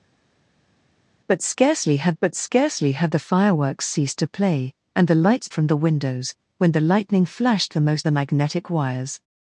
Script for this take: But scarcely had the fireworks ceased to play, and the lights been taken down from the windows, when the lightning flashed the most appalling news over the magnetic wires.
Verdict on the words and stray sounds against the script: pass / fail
fail